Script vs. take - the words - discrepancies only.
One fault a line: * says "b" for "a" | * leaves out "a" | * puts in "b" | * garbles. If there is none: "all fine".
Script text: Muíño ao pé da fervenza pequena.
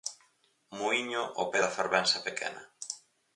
all fine